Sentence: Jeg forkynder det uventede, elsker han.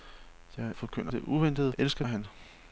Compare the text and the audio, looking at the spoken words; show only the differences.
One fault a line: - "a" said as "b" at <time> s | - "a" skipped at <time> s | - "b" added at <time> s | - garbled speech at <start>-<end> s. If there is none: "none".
none